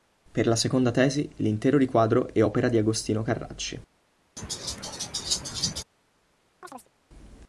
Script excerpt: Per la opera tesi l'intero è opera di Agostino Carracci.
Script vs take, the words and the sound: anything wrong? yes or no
yes